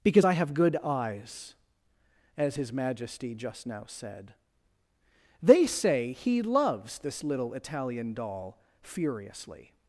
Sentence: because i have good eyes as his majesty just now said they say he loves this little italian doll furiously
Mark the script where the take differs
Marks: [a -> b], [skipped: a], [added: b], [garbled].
because i have good eyes as his majesty just now said they say he loves this little italian doll furiously